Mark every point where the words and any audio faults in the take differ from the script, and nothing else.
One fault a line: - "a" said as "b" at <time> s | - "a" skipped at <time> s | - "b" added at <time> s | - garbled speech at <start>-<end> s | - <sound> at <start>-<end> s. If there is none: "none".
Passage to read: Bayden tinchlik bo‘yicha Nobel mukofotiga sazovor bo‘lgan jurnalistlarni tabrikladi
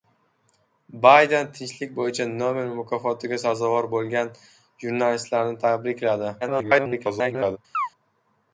- garbled speech at 6.4-7.6 s
- chirp at 7.7-7.9 s